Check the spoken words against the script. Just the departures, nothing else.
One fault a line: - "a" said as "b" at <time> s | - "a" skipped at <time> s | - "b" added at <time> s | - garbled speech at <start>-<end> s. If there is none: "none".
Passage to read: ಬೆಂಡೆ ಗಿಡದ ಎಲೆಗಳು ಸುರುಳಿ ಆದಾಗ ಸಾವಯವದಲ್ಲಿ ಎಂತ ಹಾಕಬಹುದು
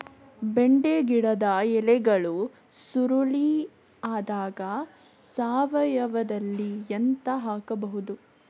none